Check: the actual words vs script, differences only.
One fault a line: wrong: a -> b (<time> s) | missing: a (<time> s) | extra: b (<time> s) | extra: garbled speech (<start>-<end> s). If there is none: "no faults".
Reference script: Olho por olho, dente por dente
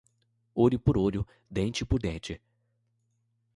no faults